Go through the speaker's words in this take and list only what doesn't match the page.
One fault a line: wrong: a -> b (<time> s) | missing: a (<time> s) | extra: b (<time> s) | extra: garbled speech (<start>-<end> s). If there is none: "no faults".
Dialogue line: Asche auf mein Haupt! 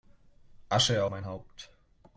missing: auf (1.1 s)